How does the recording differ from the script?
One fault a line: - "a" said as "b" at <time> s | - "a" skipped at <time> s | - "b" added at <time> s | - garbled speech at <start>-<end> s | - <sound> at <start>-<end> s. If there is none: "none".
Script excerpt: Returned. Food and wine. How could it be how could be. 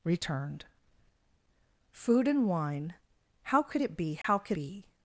- dropout at 4.2-4.2 s